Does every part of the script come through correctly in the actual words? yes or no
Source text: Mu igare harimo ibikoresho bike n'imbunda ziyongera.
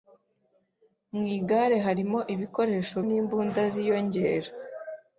no